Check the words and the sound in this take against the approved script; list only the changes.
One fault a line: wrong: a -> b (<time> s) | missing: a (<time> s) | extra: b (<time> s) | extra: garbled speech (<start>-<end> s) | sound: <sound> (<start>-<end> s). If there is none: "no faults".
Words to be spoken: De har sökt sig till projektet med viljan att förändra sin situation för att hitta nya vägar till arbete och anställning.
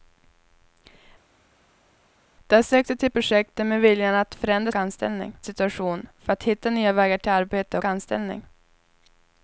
wrong: sin -> anställning (4.7 s)
missing: och (7.8 s)